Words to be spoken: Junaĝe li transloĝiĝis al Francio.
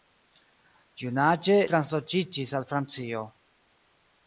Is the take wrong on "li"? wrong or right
wrong